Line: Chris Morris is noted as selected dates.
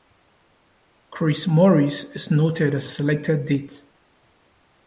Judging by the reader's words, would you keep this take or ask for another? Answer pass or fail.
pass